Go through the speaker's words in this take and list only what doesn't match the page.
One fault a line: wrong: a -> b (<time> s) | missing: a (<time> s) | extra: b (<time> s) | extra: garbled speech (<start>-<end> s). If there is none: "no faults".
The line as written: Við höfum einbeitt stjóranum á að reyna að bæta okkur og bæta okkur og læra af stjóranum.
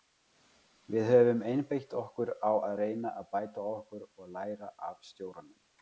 wrong: stjóranum -> okkur (2.0 s)
missing: bæta okkur og (4.3 s)